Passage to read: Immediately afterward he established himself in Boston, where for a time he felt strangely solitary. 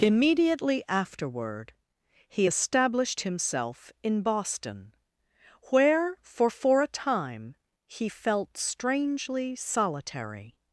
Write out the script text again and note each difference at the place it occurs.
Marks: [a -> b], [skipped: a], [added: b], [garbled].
Immediately afterward he established himself in Boston, where for [added: for] a time he felt strangely solitary.